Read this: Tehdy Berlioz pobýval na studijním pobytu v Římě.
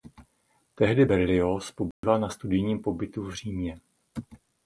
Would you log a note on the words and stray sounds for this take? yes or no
yes